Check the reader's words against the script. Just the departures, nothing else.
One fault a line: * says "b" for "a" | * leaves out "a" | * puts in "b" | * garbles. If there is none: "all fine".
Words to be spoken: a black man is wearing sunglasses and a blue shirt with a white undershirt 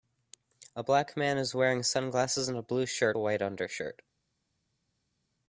* leaves out "with"